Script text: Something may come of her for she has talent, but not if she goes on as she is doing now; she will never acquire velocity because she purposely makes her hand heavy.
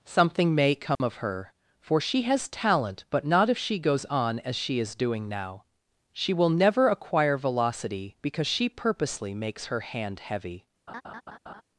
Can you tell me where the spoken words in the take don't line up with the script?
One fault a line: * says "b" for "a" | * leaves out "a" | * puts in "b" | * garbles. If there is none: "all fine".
all fine